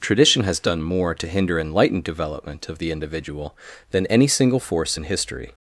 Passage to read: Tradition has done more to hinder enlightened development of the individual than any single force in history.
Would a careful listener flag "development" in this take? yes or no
no